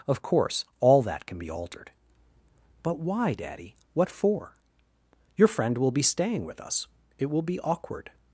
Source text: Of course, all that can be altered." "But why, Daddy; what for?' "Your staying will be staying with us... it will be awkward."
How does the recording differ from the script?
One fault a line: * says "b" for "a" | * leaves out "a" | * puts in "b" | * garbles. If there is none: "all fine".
* says "friend" for "staying"